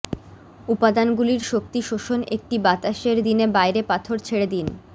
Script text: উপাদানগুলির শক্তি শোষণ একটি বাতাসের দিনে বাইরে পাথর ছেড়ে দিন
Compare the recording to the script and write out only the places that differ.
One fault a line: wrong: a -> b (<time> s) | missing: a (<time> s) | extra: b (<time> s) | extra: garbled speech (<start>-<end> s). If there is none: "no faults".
no faults